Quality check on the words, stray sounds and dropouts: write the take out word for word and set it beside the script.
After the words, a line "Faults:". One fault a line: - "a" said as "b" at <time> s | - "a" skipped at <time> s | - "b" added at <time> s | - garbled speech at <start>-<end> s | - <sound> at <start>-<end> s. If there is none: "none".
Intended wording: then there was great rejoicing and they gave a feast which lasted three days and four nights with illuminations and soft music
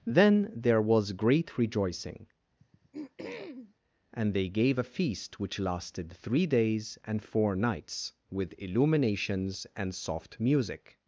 then there was great rejoicing and they gave a feast which lasted three days and four nights with illuminations and soft music
Faults:
- throat clearing at 2.6-3.7 s